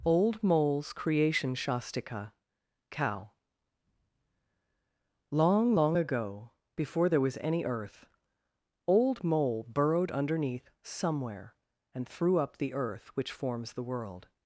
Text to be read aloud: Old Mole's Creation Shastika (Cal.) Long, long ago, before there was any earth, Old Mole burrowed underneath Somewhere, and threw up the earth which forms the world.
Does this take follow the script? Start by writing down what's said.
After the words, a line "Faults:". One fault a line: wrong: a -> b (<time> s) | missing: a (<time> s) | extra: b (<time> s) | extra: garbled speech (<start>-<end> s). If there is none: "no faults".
Old Mole's Creation Shastika (Cow.) Long, long ago, before there was any earth, Old Mole burrowed underneath Somewhere, and threw up the earth which forms the world.
Faults:
wrong: Cal -> Cow (2.9 s)